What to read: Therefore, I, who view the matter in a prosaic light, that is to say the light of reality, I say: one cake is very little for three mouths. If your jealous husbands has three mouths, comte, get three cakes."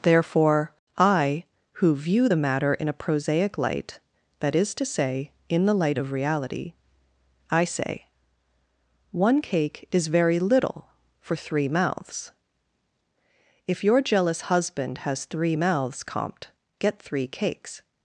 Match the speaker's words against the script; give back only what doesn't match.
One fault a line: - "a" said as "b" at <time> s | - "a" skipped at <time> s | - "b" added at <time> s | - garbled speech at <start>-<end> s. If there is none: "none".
- "in" added at 5.5 s
- "husbands" said as "husband" at 14.4 s